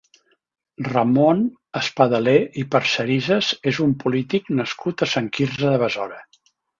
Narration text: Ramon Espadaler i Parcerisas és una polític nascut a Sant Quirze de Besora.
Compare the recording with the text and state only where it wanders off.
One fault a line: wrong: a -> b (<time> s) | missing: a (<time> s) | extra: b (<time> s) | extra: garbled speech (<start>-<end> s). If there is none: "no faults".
wrong: una -> un (3.9 s)